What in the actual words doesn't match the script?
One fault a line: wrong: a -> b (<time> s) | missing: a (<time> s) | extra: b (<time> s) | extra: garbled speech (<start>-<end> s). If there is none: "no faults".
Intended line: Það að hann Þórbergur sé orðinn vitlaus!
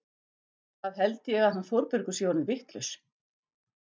extra: held ég (1.0 s)